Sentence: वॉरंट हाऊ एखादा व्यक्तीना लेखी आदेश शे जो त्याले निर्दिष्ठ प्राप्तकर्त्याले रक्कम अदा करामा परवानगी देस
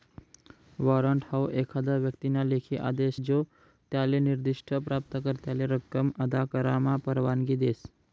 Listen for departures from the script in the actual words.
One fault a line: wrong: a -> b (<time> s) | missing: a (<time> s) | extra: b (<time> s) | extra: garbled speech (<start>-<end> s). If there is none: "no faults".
missing: शे (3.2 s)